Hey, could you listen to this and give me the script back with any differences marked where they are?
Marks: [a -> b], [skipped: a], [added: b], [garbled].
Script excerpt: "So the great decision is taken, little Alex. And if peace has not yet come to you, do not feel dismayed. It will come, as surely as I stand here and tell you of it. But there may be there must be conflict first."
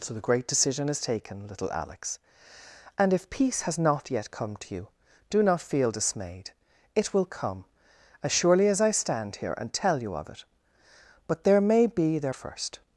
"So the great decision is taken, little Alex. And if peace has not yet come to you, do not feel dismayed. It will come, as surely as I stand here and tell you of it. But there may be there [skipped: must be conflict] first."